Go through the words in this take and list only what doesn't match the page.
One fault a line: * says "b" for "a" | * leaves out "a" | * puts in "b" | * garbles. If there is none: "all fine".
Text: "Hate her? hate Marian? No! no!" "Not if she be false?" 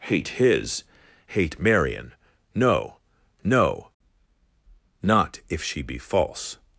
* says "his" for "her"